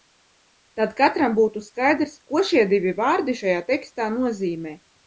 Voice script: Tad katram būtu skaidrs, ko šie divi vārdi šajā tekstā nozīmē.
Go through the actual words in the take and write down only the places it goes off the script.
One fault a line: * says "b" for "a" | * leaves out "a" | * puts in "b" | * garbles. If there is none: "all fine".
all fine